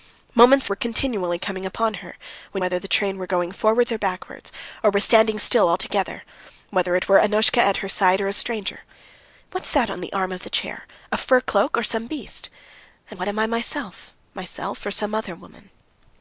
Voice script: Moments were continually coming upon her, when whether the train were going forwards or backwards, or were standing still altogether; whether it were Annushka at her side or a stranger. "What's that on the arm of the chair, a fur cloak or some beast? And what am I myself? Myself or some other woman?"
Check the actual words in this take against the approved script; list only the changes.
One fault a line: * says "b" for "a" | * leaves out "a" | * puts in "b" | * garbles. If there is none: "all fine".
all fine